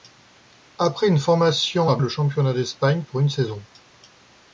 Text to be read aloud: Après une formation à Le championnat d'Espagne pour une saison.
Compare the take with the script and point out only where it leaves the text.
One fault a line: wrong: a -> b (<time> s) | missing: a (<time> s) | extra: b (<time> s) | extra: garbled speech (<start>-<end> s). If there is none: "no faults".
no faults